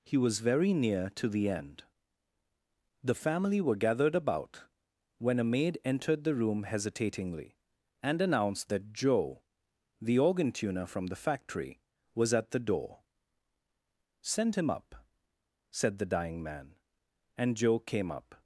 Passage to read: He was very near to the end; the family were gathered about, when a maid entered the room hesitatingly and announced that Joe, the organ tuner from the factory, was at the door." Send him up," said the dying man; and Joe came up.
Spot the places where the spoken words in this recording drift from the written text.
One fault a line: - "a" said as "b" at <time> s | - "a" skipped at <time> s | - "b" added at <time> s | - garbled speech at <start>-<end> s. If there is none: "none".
none